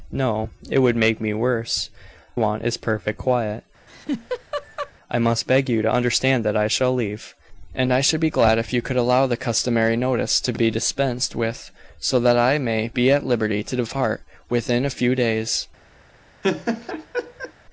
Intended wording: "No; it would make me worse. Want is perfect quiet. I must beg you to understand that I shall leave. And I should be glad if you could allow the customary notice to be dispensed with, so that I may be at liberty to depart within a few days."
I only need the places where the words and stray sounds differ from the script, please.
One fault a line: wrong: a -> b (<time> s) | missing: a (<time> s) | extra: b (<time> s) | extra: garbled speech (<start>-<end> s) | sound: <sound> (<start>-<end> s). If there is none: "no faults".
sound: laugh (3.9-4.9 s)
sound: laugh (16.4-17.5 s)